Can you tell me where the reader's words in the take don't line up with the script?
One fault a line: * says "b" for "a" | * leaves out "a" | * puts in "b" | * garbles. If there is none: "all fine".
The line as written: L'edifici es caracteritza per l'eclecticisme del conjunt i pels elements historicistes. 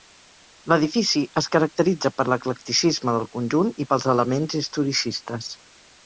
all fine